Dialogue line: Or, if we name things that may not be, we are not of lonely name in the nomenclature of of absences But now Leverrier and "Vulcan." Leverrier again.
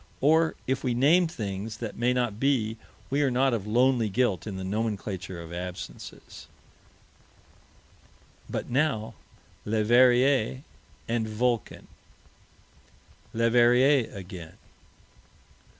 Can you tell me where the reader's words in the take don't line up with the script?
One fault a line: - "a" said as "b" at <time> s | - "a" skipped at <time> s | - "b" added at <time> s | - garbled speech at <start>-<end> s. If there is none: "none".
- "name" said as "guilt" at 4.1 s
- "of" skipped at 5.5 s